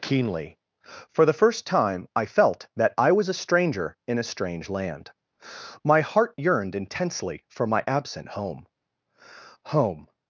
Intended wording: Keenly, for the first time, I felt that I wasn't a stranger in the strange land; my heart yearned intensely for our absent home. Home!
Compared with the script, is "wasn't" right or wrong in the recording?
wrong